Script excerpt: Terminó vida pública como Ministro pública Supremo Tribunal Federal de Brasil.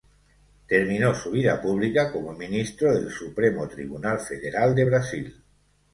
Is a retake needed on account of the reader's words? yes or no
yes